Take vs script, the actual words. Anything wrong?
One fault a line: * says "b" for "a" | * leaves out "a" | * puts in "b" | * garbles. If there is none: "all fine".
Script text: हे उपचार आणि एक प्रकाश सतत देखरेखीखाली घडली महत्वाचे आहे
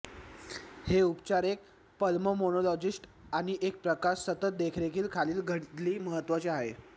* puts in "एक पल्मोनोलॉजिस्ट"